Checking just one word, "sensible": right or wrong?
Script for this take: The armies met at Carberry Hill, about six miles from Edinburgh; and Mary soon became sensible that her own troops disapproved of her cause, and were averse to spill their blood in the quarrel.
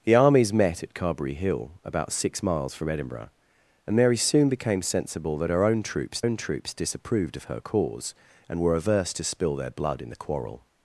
right